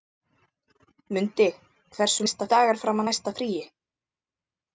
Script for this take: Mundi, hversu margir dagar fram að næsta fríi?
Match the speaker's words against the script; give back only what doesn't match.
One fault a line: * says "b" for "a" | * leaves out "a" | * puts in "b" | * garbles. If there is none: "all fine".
* says "næsta" for "margir"